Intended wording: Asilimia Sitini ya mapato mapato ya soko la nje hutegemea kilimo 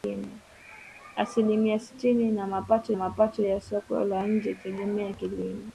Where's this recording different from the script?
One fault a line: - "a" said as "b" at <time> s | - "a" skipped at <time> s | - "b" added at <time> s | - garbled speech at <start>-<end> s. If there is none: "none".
none